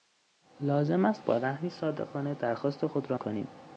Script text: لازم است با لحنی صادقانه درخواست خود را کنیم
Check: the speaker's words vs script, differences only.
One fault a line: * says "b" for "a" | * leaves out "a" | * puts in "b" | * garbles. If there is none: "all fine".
all fine